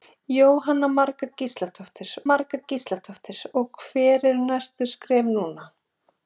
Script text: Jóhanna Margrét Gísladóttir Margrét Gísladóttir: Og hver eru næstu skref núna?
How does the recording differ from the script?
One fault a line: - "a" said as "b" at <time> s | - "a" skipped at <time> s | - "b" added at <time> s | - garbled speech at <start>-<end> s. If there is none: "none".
none